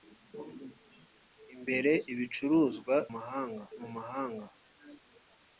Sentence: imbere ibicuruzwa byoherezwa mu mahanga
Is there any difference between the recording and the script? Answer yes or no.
yes